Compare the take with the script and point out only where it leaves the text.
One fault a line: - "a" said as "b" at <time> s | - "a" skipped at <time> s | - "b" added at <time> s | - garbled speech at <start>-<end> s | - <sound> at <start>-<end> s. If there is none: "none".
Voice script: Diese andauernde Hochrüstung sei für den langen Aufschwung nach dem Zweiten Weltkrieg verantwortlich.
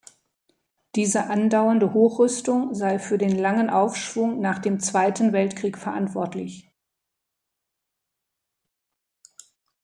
none